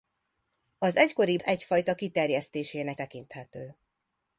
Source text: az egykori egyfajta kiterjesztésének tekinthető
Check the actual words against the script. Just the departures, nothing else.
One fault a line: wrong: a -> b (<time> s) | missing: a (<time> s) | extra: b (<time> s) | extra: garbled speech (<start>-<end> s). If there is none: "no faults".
no faults